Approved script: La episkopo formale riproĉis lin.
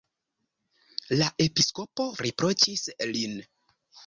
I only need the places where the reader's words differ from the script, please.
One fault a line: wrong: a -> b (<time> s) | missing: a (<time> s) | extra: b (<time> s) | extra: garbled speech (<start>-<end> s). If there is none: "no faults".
missing: formale (2.1 s)